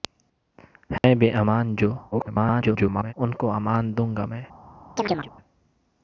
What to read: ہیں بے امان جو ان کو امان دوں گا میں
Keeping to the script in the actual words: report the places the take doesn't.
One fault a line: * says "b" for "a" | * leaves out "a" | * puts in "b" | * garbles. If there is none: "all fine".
* garbles